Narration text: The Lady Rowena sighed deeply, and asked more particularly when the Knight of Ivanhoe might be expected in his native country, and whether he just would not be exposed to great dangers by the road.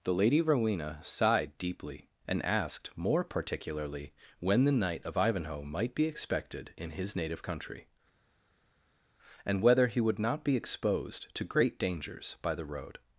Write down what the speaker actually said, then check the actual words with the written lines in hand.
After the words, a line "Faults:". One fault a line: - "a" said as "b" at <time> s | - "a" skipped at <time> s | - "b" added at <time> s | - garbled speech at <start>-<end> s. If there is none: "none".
The Lady Rowena sighed deeply, and asked more particularly when the Knight of Ivanhoe might be expected in his native country, and whether he would not be exposed to great dangers by the road.
Faults:
- "just" skipped at 10.0 s